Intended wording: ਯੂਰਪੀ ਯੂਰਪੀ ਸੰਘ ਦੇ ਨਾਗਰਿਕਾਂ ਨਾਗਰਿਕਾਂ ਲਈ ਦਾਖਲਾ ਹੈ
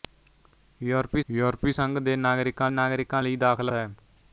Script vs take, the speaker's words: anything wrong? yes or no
no